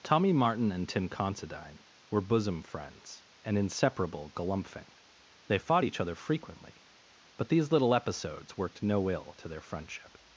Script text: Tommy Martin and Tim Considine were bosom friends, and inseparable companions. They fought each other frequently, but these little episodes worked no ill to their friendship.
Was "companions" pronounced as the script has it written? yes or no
no